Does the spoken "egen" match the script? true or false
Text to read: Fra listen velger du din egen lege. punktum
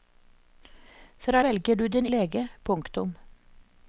false